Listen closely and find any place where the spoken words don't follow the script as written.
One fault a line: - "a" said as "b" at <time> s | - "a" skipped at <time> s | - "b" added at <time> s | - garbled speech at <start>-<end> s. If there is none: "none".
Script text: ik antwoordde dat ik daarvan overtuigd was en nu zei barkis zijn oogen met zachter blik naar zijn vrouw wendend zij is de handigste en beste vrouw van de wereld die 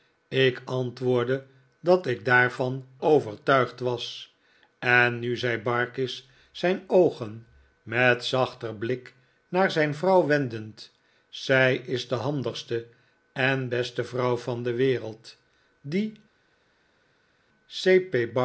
none